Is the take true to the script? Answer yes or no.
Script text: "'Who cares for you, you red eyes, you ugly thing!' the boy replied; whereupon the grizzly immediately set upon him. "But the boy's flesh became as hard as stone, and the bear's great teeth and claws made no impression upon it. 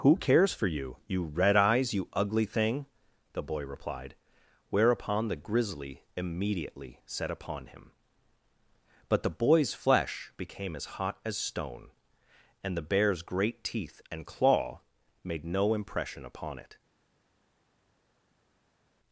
no